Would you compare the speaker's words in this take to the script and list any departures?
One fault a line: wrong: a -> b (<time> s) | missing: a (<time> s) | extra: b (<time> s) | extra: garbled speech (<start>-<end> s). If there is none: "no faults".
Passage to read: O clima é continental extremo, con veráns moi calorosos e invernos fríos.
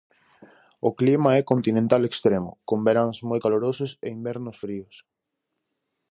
no faults